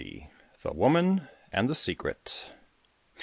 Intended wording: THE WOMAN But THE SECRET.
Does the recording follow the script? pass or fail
fail